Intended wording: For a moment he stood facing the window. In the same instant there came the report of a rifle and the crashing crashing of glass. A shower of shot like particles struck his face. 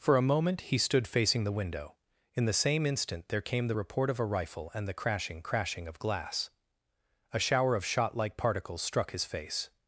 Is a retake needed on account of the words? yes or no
no